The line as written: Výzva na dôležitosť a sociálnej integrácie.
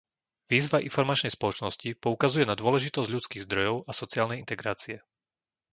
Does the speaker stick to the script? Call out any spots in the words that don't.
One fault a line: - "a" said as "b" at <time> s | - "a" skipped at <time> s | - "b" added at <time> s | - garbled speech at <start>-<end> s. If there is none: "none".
- "informačnej spoločnosti poukazuje" added at 0.8 s
- "ľudských zdrojov" added at 3.0 s